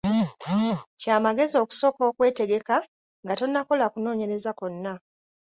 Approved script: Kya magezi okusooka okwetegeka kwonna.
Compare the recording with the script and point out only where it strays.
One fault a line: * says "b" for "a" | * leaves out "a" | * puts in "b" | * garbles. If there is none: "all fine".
* puts in "nga tonnakola kunoonyereza"